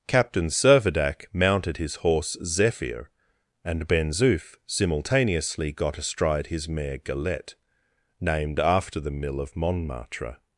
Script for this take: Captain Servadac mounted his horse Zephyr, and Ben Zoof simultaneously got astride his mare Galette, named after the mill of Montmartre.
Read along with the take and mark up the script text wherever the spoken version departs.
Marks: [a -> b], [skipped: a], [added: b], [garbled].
Captain Servadac mounted his horse Zephyr, and Ben Zoof simultaneously got astride his mare Galette, named after the mill of Montmartre.